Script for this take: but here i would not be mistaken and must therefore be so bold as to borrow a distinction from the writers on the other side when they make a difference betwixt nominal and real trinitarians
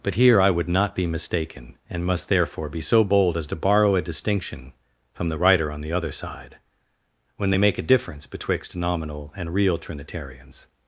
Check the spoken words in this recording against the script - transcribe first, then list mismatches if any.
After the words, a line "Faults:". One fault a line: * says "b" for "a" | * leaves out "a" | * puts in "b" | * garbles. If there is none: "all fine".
but here i would not be mistaken and must therefore be so bold as to borrow a distinction from the writer on the other side when they make a difference betwixt nominal and real trinitarians
Faults:
* says "writer" for "writers"